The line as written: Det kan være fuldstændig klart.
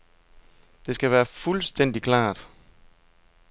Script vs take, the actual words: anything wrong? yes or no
yes